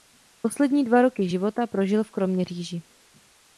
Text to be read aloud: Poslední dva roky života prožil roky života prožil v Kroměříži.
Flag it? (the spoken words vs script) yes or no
yes